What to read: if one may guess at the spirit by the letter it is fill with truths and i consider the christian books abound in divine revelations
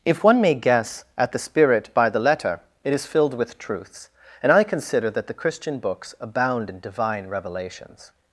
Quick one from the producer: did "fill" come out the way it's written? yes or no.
no